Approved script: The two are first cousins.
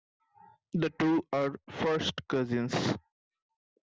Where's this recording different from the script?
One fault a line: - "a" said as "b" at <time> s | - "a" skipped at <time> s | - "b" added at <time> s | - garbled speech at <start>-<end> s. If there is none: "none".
none